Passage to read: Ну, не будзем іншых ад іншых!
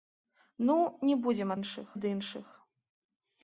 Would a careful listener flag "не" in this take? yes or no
no